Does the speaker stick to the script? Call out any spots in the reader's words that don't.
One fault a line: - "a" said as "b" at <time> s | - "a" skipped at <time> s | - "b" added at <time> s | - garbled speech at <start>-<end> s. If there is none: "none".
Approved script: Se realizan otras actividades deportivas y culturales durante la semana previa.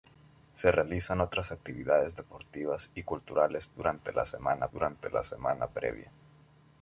- "durante la semana" added at 4.7 s